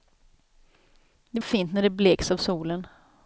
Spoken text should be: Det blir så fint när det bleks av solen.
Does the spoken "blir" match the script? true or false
false